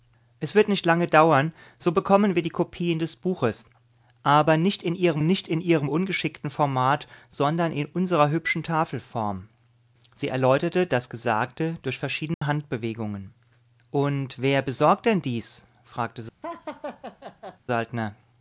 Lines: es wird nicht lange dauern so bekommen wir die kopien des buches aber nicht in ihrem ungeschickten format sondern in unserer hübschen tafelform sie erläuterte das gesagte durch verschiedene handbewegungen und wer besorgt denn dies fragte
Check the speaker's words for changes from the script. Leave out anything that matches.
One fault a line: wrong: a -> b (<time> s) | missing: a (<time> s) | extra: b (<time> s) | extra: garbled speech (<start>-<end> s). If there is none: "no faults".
extra: nicht in ihrem (5.2 s)